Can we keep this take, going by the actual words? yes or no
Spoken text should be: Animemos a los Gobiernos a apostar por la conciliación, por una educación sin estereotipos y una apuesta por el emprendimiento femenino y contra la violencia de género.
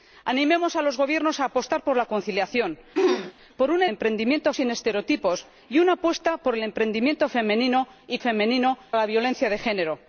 no